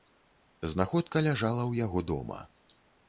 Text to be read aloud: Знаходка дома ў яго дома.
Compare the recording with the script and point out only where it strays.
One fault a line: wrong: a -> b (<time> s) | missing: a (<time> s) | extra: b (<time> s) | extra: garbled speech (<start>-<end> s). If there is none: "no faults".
wrong: дома -> ляжала (1.3 s)